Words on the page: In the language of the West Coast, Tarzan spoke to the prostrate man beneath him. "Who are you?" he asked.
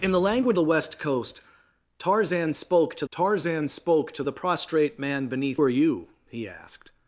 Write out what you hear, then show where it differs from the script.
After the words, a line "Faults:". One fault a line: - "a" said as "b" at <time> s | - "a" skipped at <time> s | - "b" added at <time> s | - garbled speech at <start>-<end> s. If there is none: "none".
In the language the West Coast, Tarzan spoke to Tarzan spoke to the prostrate man beneath are you?" he asked.
Faults:
- "of" skipped at 0.6 s
- "Tarzan spoke to" added at 3.1 s
- "him Who" skipped at 5.6 s